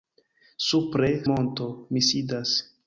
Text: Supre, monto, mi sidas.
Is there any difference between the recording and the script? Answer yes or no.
no